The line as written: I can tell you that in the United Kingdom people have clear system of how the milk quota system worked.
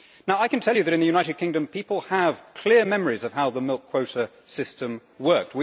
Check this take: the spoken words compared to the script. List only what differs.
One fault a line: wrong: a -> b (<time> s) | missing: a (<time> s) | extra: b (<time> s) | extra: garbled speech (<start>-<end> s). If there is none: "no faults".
wrong: system -> memories (2.8 s)